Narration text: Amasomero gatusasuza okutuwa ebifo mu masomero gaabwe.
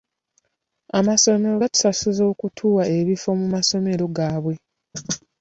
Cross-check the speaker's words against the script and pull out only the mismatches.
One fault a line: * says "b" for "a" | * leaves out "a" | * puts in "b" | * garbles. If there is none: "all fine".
all fine